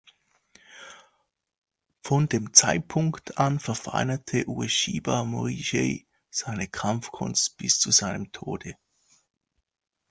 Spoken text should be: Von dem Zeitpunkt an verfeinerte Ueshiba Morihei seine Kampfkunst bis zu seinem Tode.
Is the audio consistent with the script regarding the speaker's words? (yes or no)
yes